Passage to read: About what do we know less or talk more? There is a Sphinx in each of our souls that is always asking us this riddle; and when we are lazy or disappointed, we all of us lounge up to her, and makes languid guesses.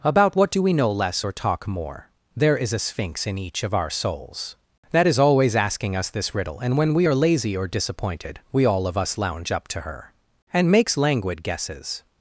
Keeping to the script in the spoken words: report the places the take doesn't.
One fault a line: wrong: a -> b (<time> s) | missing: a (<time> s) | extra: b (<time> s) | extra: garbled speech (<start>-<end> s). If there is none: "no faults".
no faults